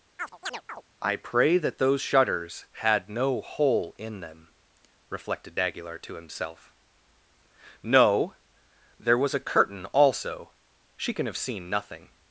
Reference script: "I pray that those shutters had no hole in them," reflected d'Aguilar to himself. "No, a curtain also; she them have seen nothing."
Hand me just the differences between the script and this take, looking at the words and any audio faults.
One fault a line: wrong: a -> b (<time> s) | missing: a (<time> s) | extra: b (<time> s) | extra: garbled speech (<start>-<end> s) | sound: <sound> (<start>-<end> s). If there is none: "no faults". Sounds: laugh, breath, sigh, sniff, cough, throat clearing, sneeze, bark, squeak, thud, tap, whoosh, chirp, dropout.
sound: chirp (0.2-0.8 s)
extra: there was (9.0 s)
wrong: them -> can (11.1 s)